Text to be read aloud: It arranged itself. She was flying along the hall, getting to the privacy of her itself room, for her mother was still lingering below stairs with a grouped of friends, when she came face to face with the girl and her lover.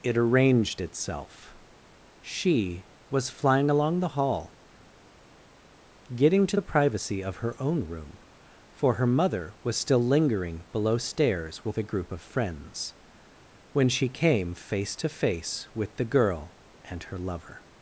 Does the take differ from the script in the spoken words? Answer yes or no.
yes